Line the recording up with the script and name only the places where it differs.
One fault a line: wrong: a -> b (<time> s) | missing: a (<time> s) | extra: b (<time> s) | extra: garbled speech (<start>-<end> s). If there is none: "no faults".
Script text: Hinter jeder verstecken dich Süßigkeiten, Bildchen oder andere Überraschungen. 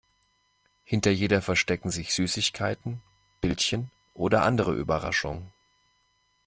wrong: dich -> sich (1.9 s)